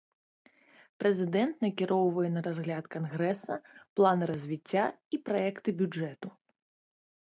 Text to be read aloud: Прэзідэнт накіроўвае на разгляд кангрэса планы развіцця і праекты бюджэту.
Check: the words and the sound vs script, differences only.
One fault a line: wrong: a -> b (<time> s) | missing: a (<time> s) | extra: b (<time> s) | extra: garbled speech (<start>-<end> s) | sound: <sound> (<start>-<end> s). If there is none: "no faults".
no faults